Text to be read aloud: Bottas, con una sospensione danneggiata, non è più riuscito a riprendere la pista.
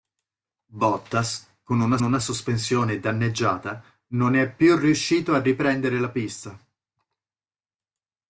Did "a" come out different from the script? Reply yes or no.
no